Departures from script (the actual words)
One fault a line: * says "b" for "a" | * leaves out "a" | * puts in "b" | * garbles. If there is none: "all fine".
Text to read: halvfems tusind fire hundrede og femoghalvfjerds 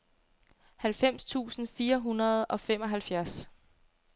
all fine